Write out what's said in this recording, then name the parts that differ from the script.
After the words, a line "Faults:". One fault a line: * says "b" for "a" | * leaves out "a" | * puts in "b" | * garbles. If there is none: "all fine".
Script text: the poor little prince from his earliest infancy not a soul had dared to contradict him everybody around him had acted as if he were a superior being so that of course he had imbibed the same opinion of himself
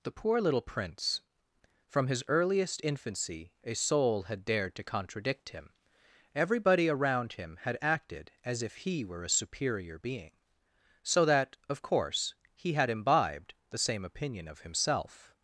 the poor little prince from his earliest infancy a soul had dared to contradict him everybody around him had acted as if he were a superior being so that of course he had imbibed the same opinion of himself
Faults:
* leaves out "not"